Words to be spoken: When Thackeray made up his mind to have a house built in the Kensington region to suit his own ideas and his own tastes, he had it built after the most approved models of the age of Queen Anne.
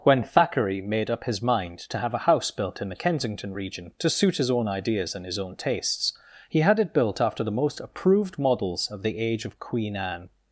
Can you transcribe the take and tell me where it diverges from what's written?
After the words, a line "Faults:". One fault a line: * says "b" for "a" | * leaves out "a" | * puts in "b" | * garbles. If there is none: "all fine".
When Thackeray made up his mind to have a house built in the Kensington region to suit his own ideas and his own tastes, he had it built after the most approved models of the age of Queen Anne.
Faults:
all fine